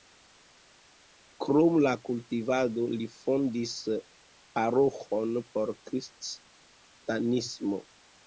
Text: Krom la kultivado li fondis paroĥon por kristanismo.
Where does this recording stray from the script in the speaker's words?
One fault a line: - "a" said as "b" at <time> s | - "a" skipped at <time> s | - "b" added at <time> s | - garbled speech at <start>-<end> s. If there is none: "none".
none